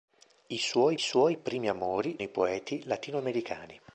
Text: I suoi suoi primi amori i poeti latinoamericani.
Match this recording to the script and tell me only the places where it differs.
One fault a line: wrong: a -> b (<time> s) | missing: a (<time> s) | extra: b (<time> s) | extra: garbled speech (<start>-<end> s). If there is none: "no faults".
no faults